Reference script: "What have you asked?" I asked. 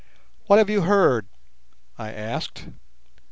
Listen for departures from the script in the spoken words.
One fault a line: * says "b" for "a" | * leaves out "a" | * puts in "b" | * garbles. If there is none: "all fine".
* says "heard" for "asked"